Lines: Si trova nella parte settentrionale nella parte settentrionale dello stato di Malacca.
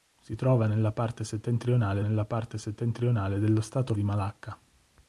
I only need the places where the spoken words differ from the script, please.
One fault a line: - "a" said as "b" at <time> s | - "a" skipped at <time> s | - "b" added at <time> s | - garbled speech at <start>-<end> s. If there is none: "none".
none